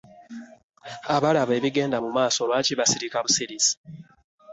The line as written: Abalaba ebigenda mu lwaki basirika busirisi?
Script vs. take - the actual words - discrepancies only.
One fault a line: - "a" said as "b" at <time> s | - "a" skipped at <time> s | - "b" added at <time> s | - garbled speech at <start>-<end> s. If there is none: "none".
- "maaso" added at 2.2 s